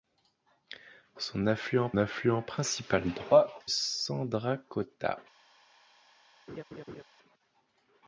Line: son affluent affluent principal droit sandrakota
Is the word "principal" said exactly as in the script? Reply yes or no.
yes